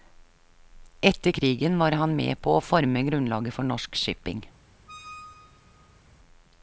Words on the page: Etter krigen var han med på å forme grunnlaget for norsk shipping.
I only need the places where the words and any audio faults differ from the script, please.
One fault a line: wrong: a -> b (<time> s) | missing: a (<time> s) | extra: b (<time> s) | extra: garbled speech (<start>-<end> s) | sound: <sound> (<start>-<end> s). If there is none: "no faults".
sound: squeak (4.9-6.0 s)